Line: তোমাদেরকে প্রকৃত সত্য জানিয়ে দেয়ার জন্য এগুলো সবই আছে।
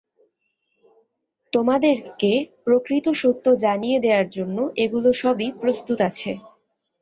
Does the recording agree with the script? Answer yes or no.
no